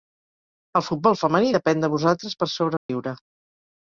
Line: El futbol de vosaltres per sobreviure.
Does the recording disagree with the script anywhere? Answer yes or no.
yes